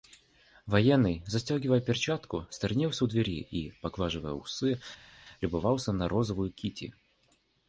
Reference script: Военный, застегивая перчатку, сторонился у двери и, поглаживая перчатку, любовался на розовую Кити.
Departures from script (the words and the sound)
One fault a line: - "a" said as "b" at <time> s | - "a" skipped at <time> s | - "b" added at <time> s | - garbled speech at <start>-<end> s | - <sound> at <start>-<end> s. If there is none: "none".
- "перчатку" said as "усы" at 4.3 s